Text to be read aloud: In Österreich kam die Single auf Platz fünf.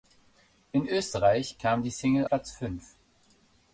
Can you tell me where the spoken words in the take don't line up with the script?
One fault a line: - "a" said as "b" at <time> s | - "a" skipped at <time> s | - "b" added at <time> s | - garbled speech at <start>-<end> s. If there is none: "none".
- "auf" skipped at 2.2 s